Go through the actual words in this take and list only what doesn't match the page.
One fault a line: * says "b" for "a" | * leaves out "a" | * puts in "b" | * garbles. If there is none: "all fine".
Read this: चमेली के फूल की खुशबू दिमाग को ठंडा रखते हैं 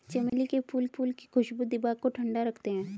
* puts in "फूल"